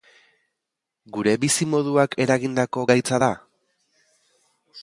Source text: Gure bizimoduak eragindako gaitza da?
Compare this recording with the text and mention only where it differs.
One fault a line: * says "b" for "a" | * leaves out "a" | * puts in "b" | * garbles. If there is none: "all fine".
all fine